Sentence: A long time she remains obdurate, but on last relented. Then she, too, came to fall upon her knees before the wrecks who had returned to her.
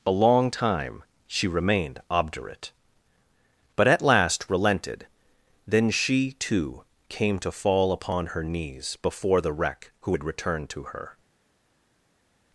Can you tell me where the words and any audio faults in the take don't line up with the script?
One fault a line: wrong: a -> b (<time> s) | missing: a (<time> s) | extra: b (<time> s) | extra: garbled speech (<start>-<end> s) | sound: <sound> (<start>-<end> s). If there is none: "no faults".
wrong: remains -> remained (1.5 s)
wrong: on -> at (3.9 s)
wrong: wrecks -> wreck (9.5 s)